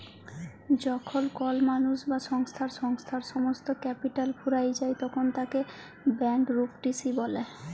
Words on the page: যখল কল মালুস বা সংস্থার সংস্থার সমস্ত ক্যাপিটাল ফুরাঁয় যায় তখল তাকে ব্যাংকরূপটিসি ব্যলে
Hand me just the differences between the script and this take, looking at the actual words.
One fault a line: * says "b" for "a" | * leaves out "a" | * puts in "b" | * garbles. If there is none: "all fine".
all fine